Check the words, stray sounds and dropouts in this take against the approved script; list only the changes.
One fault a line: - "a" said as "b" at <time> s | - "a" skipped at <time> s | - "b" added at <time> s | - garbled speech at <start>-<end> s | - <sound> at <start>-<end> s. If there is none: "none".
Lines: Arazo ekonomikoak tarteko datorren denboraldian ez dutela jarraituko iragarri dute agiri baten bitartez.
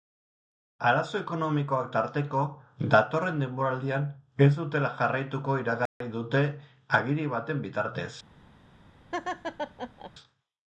- dropout at 5.9-6.0 s
- laugh at 9.1-10.1 s